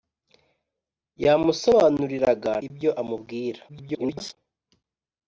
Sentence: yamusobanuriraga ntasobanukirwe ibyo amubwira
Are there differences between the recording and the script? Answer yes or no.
yes